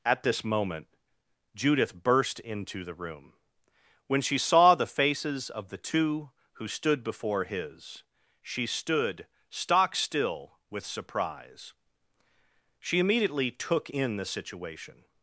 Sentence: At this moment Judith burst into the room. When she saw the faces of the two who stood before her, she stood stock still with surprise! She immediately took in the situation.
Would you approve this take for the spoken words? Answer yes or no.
no